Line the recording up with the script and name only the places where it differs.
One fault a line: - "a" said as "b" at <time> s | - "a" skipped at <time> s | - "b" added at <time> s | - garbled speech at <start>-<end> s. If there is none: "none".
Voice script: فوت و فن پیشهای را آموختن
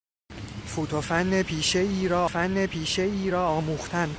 - "فن پیشهای را" added at 2.3 s